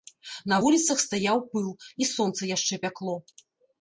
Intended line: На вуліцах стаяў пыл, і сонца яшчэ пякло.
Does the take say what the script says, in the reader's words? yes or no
yes